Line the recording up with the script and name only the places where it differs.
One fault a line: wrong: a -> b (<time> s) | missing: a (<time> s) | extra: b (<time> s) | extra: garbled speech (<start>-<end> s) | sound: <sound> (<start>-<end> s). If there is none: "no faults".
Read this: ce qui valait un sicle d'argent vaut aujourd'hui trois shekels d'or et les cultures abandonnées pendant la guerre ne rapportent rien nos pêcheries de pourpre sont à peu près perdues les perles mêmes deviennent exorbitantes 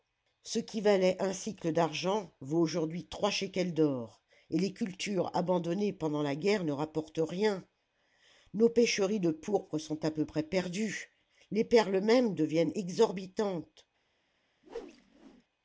sound: whoosh (14.6-15.4 s)